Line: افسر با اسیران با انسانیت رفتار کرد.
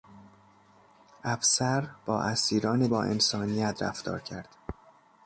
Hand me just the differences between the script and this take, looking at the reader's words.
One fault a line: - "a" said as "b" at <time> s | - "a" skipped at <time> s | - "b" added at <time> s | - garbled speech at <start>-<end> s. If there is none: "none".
none